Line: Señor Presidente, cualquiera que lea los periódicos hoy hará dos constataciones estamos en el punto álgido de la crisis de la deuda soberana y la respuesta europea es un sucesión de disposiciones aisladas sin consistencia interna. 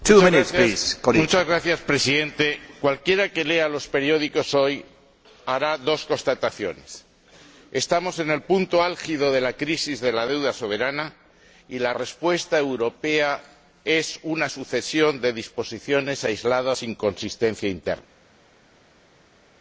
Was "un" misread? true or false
true